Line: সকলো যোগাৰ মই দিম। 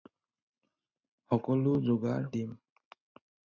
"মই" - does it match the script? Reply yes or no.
no